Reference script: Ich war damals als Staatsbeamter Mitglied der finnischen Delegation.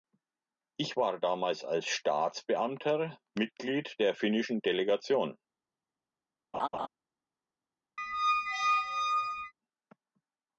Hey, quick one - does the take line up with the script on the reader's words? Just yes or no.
yes